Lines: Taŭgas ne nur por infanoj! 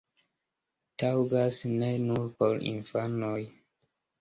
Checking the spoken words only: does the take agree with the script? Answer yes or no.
yes